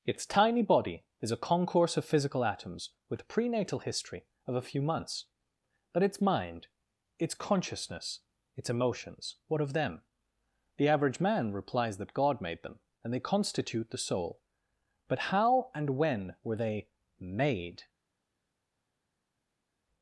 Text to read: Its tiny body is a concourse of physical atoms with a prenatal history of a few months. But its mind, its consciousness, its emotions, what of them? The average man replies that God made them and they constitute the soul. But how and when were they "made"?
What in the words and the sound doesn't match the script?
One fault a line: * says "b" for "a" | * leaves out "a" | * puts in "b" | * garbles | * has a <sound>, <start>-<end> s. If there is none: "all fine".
* leaves out "a"